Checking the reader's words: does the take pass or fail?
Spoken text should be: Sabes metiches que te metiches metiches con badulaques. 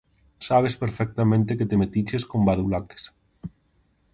fail